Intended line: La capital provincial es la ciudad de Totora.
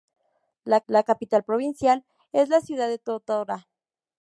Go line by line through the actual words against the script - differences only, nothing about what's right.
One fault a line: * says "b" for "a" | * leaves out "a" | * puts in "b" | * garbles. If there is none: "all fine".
* puts in "la"